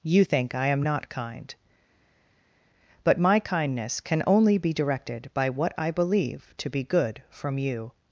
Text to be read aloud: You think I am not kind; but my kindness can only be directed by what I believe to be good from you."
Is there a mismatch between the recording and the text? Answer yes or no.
no